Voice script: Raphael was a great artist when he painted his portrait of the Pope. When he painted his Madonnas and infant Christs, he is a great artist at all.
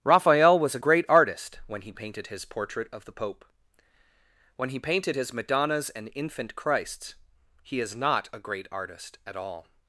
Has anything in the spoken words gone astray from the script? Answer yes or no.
yes